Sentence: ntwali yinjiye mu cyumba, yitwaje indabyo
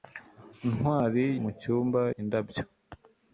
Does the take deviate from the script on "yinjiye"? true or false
true